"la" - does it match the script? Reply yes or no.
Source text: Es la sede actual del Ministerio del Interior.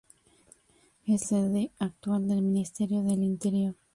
no